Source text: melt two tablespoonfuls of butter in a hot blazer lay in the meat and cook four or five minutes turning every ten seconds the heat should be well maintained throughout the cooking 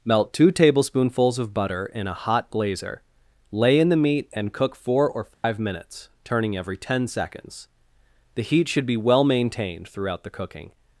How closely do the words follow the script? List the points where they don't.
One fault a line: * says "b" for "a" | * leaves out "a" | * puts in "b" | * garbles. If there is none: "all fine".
all fine